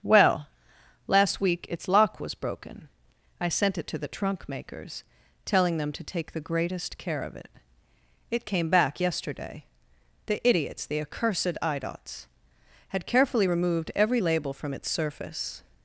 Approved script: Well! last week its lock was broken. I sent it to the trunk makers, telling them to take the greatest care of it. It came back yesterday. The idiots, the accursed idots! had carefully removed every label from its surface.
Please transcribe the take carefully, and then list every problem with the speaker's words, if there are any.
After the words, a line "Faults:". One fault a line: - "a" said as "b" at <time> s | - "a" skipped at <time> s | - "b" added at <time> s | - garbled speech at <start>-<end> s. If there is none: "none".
Well! last week its lock was broken. I sent it to the trunk makers, telling them to take the greatest care of it. It came back yesterday. The idiots, the accursed idots! had carefully removed every label from its surface.
Faults:
none